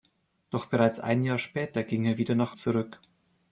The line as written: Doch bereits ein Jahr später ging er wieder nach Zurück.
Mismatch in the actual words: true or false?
false